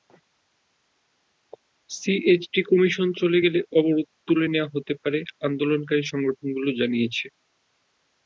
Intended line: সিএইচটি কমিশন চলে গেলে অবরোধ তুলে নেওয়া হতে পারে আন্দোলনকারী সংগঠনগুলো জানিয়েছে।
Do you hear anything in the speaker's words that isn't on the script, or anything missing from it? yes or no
no